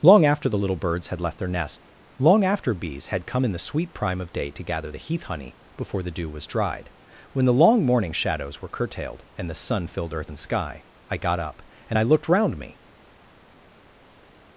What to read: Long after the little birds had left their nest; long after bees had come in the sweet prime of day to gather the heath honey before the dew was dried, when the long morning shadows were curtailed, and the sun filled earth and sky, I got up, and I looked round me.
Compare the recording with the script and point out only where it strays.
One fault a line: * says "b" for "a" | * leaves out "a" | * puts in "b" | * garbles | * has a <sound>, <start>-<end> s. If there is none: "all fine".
all fine